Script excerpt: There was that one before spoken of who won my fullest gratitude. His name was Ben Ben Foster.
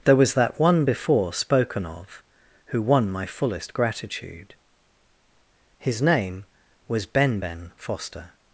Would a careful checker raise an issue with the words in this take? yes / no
no